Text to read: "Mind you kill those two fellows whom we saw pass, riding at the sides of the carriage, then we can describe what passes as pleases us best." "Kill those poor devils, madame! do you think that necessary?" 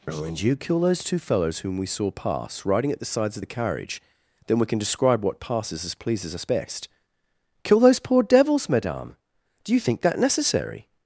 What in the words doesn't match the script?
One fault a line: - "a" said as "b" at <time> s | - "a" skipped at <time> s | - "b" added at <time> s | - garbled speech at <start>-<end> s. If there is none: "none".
- "Mind" said as "And" at 0.1 s